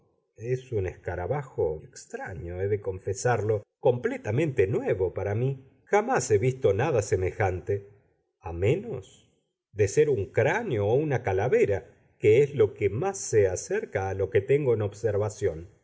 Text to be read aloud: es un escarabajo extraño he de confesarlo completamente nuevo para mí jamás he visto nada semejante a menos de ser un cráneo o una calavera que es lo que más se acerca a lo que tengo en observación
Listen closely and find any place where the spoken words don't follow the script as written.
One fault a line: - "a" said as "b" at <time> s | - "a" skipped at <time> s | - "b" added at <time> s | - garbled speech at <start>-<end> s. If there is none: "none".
none